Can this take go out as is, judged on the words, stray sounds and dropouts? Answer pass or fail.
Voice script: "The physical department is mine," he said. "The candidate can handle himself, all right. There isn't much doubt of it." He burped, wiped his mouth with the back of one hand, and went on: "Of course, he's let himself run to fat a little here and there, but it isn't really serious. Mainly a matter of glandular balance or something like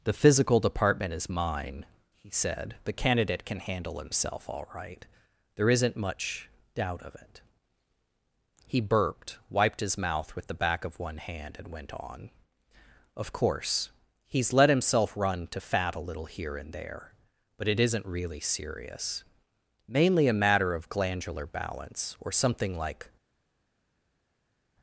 pass